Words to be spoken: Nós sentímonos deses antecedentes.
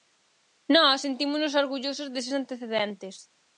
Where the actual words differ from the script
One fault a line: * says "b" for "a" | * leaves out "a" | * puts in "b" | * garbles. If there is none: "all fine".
* puts in "orgullosos"